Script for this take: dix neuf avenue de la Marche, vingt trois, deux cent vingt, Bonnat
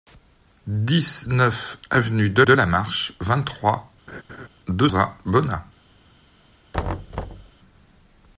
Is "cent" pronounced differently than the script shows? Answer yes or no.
yes